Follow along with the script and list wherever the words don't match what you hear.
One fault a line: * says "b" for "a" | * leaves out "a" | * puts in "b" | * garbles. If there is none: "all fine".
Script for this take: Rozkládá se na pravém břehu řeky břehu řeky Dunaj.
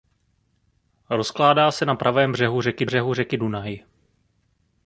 all fine